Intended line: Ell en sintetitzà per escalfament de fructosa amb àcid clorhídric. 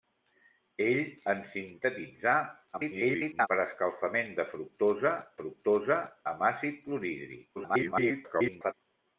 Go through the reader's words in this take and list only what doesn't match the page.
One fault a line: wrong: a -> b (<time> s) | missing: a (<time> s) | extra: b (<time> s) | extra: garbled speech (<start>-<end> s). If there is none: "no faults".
extra: garbled speech (2.7-3.5 s)
extra: fructosa (5.4 s)
extra: garbled speech (7.6-8.7 s)